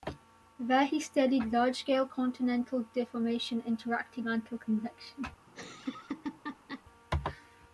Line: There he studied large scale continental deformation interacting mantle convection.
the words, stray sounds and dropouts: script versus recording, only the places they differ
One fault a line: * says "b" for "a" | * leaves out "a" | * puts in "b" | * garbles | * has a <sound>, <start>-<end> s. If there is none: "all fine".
* has a laugh, 5.5-6.8 s